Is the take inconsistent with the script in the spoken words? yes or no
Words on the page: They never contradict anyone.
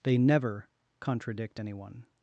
no